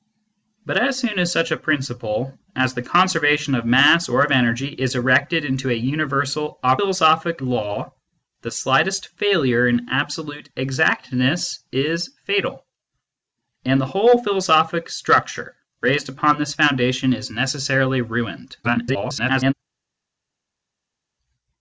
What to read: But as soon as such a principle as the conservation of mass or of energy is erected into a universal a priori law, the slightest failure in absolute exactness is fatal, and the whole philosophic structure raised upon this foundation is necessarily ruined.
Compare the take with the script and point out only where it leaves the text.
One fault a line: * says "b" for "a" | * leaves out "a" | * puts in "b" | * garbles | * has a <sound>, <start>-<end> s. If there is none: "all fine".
* says "philosophic" for "priori"
* garbles